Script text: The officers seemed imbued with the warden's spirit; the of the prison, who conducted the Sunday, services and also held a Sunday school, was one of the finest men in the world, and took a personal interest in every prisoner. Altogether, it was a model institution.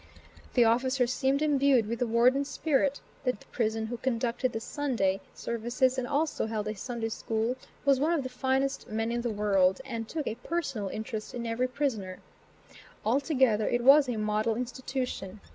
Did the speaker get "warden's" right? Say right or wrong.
right